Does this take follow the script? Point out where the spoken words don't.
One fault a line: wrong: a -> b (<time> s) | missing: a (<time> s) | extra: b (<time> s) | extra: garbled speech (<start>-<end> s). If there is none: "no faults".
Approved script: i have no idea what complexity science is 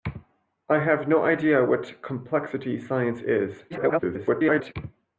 extra: garbled speech (3.7-4.7 s)